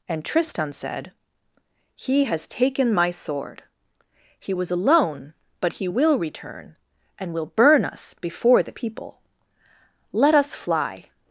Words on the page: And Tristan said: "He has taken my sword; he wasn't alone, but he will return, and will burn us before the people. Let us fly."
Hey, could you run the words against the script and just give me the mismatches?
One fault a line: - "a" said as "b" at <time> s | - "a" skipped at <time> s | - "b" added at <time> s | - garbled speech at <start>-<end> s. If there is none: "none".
- "wasn't" said as "was" at 4.5 s